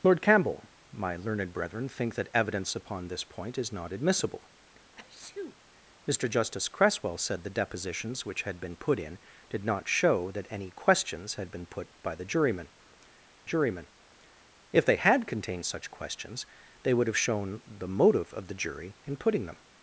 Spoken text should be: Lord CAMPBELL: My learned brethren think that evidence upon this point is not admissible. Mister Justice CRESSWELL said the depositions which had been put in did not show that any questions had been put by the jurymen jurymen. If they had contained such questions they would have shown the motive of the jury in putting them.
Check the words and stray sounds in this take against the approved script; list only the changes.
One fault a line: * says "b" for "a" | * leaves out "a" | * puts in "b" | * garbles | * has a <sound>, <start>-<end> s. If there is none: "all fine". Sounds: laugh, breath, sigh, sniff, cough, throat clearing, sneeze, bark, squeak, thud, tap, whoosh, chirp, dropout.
* has a sneeze, 5.0-5.6 s